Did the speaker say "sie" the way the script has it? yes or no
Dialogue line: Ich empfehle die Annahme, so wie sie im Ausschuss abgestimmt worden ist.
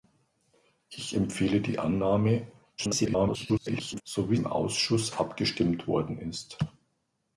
no